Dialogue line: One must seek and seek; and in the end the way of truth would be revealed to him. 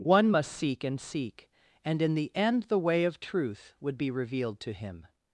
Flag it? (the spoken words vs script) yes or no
no